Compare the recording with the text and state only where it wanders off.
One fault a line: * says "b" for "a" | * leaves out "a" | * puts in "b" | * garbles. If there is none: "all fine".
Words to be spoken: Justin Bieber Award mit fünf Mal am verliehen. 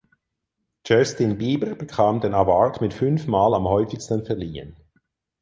* puts in "bekam den"
* puts in "häufigsten"